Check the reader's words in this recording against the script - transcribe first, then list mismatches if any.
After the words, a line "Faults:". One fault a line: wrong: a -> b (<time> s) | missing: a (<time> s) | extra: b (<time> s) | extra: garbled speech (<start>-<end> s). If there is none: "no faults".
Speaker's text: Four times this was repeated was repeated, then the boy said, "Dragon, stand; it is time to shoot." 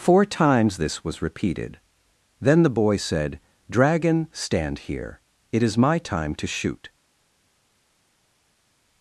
Four times this was repeated, then the boy said, "Dragon, stand here; it is my time to shoot."
Faults:
missing: was repeated (1.8 s)
extra: here (4.8 s)
extra: my (5.8 s)